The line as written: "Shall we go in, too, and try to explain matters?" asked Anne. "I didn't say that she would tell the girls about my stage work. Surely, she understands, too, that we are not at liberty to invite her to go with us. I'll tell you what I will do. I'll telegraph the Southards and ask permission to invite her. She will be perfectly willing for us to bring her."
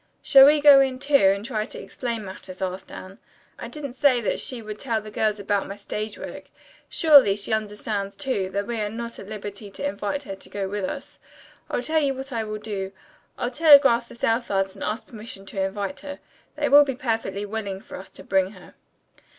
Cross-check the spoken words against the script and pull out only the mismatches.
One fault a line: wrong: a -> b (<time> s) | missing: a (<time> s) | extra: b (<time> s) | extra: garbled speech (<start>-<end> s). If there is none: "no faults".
wrong: She -> They (16.6 s)